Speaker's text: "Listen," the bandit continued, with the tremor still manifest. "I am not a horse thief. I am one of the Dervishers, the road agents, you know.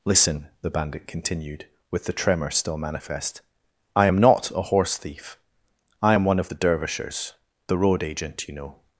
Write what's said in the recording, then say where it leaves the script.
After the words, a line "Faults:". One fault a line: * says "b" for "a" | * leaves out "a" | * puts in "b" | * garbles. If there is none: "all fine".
"Listen," the bandit continued, with the tremor still manifest. "I am not a horse thief. I am one of the Dervishers, the road agent, you know.
Faults:
* says "agent" for "agents"